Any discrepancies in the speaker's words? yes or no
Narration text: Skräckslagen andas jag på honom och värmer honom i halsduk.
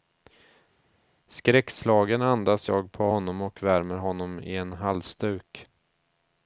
yes